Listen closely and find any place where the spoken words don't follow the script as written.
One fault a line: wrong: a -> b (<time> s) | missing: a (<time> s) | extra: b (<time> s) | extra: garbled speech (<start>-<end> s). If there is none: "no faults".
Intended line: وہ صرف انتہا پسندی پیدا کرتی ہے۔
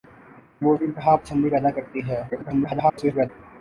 missing: صرف (0.7 s)
extra: garbled speech (2.3-3.3 s)